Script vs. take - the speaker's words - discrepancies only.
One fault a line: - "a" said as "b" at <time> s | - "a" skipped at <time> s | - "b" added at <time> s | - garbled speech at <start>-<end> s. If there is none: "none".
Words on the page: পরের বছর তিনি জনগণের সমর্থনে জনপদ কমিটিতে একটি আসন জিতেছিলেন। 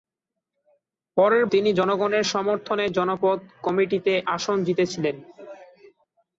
- "বছর" skipped at 1.4 s
- "একটি" skipped at 4.1 s